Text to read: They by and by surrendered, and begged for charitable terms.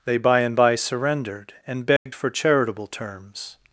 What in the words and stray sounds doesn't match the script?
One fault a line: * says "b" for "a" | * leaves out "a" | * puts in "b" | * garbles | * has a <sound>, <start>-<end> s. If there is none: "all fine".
* has a dropout, 2.0-2.1 s